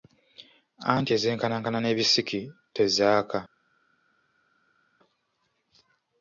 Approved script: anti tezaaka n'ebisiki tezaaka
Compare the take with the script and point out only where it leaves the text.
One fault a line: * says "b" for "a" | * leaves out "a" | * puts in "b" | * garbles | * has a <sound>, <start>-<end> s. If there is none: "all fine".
* says "ezenkanankana" for "tezaaka"